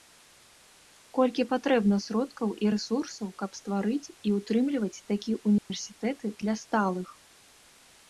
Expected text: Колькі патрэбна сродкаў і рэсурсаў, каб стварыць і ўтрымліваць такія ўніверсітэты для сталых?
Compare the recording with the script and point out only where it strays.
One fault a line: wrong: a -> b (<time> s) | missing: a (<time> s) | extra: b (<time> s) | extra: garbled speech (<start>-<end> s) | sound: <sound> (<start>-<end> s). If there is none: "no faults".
sound: dropout (5.6-5.7 s)